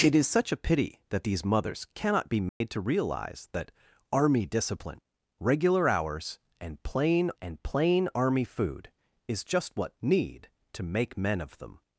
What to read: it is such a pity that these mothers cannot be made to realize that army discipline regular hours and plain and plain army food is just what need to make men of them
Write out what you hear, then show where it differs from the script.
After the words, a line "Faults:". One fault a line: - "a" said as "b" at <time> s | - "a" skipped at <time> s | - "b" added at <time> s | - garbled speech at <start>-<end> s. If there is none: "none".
it is such a pity that these mothers cannot be made to realize that army discipline regular hours and plain and plain army food is just what need to make men of them
Faults:
none